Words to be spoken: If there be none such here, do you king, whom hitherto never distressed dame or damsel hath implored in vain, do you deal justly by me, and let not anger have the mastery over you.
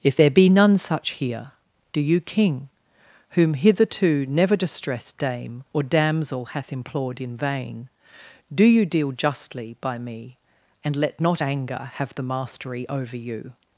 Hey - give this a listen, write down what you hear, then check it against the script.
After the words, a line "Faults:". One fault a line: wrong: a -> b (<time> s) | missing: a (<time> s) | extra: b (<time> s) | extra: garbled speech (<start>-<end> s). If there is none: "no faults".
If there be none such here, do you king, whom hitherto never distressed dame or damsel hath implored in vain, do you deal justly by me, and let not anger have the mastery over you.
Faults:
no faults